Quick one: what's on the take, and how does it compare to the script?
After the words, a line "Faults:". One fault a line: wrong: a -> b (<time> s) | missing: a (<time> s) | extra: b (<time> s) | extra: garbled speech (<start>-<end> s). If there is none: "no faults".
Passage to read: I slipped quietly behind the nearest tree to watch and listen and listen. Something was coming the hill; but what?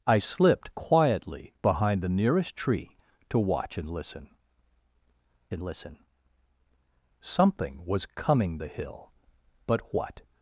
I slipped quietly behind the nearest tree to watch and listen and listen. Something was coming the hill; but what?
Faults:
no faults